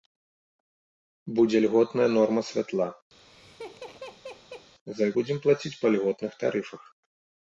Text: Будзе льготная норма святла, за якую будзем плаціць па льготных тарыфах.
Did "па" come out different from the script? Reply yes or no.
no